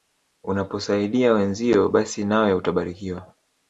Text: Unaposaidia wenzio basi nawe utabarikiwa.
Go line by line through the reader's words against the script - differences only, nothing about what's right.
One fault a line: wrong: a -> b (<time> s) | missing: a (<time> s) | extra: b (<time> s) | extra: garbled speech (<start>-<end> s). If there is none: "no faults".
no faults